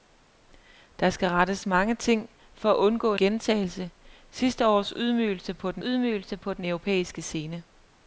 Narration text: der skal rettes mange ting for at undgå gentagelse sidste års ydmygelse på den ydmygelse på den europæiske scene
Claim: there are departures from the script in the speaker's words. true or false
false